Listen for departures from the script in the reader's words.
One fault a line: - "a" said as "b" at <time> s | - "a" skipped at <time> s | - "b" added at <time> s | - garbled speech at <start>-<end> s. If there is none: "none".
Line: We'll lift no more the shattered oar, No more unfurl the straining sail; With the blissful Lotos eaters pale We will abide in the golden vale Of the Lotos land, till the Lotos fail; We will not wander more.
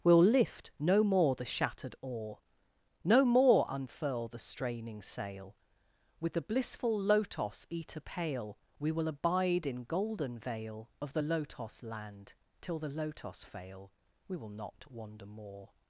- "eaters" said as "eater" at 7.7 s
- "the" skipped at 9.8 s